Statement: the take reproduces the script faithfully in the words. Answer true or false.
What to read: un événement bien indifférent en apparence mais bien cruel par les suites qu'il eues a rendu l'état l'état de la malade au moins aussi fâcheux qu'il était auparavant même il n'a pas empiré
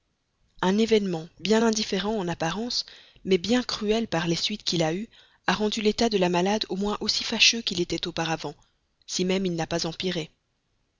false